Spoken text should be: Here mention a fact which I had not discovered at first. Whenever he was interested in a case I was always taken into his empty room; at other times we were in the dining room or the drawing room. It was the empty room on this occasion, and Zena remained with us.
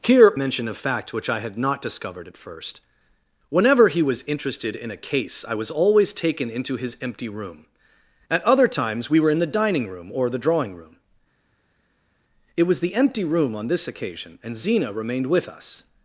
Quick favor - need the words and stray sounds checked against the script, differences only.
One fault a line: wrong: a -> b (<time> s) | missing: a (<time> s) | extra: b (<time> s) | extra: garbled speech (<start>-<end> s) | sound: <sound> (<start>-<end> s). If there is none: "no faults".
no faults